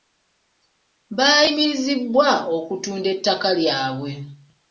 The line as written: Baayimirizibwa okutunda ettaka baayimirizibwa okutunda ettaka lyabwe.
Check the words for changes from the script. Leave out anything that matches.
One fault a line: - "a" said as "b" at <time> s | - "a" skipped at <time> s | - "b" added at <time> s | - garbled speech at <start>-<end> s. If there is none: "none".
- "baayimirizibwa okutunda ettaka" skipped at 3.5 s